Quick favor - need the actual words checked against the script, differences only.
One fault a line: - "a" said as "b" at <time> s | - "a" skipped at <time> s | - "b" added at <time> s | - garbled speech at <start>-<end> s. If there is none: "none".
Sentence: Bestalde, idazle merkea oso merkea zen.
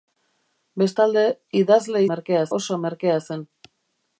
none